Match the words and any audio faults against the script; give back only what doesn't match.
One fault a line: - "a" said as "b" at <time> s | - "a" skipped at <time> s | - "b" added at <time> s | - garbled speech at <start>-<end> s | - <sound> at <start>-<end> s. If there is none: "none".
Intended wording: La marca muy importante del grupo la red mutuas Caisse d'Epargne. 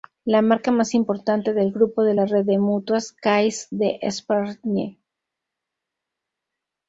- "muy" said as "más" at 0.7 s
- "de" added at 2.0 s
- "de" added at 2.4 s